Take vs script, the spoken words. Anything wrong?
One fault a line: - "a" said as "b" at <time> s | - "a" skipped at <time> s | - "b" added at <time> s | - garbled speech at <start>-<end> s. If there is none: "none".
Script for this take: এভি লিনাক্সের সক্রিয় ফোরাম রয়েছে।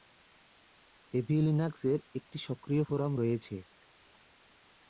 - "একটি" added at 2.2 s